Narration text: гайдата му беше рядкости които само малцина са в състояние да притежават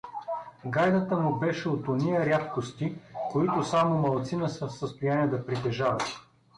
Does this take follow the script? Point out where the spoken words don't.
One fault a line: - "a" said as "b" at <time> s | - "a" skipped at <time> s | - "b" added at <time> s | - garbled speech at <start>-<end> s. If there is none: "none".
- "от ония" added at 1.7 s